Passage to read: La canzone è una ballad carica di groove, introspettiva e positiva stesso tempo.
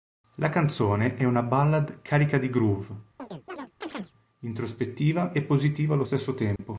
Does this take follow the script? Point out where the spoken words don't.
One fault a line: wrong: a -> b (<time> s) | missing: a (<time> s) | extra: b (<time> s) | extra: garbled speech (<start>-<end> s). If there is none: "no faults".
extra: allo (5.9 s)